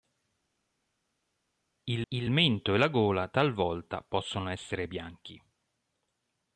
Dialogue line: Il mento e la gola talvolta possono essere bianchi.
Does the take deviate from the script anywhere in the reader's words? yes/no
yes